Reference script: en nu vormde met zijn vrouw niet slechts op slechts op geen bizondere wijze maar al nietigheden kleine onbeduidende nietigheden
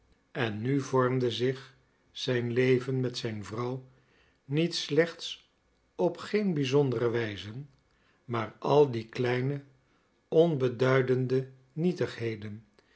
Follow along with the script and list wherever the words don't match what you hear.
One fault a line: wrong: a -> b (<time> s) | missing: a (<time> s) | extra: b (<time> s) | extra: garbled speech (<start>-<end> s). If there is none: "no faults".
extra: zich zijn leven (1.3 s)
missing: slechts op (6.2 s)
wrong: nietigheden -> die (8.9 s)